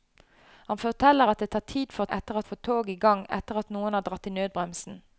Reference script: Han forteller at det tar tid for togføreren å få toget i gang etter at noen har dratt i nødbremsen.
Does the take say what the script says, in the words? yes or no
no